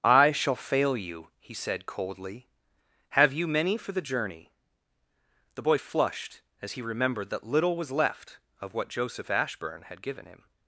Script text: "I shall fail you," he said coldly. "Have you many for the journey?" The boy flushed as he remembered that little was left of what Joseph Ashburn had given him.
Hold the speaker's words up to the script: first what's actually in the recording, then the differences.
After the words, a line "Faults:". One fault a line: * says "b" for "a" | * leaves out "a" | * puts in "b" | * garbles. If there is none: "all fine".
"I shall fail you," he said coldly. "Have you many for the journey?" The boy flushed as he remembered that little was left of what Joseph Ashburn had given him.
Faults:
all fine